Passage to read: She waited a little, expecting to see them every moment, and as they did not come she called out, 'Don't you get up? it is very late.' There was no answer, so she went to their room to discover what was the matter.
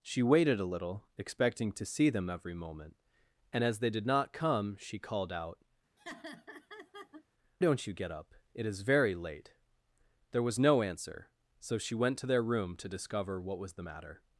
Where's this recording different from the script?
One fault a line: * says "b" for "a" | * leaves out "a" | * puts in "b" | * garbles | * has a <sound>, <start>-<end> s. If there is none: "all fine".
* has a laugh, 6.0-7.2 s